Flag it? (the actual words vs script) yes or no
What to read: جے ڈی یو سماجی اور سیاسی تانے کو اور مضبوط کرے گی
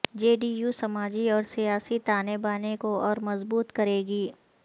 yes